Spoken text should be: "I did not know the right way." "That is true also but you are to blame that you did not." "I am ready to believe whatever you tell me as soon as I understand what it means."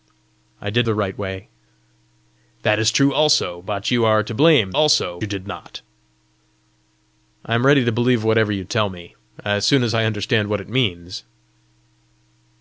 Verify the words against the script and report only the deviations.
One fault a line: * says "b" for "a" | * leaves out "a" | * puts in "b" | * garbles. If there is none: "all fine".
* leaves out "not know"
* says "also" for "that"